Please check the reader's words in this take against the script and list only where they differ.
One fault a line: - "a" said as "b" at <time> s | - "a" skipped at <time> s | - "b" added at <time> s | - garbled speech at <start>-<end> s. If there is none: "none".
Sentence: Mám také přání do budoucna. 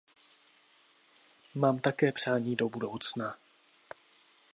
none